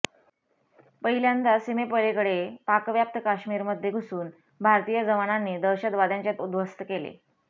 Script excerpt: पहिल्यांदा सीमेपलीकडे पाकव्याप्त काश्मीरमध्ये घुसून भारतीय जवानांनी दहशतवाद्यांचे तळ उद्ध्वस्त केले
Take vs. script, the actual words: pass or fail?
fail